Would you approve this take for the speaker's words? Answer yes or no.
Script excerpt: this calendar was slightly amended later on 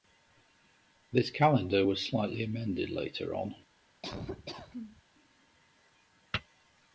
yes